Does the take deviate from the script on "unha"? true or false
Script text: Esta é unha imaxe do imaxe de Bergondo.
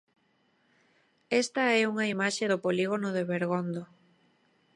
false